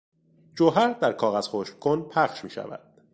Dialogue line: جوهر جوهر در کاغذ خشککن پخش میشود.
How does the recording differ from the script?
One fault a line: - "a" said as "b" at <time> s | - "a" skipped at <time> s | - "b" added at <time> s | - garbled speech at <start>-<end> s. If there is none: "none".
- "جوهر" skipped at 0.9 s